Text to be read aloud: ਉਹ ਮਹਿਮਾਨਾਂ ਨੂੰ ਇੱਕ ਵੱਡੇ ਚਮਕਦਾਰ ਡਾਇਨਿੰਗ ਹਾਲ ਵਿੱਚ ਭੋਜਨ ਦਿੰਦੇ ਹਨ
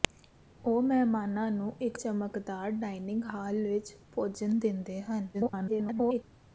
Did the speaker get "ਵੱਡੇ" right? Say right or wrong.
wrong